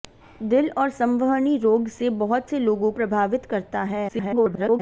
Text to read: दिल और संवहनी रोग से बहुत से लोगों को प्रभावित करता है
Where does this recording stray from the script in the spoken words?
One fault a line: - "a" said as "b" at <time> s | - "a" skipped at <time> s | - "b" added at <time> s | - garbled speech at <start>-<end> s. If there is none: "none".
- "को" skipped at 2.9 s
- garbled speech at 4.1-4.8 s